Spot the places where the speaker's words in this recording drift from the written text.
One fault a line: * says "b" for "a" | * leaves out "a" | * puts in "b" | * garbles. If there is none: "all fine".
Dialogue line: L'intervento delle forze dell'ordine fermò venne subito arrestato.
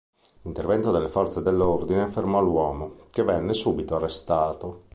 * puts in "l'uomo che"